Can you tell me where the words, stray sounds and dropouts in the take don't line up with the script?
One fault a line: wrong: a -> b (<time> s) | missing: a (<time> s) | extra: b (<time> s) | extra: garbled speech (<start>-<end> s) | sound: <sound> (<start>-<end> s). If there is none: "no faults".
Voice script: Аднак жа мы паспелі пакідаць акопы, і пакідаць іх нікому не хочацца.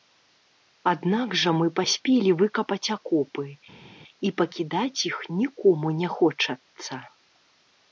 wrong: пакідаць -> выкапаць (2.4 s)